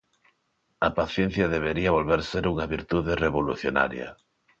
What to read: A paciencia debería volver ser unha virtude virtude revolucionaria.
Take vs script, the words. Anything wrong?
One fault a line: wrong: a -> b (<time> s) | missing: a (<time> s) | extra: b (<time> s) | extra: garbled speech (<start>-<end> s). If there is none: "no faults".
missing: virtude (3.1 s)